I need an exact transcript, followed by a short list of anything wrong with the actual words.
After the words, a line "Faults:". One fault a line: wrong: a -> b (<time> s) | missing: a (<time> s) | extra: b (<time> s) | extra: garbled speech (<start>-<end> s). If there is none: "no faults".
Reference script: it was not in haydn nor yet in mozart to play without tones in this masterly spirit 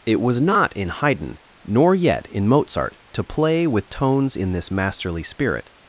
it was not in haydn nor yet in mozart to play with tones in this masterly spirit
Faults:
wrong: without -> with (3.7 s)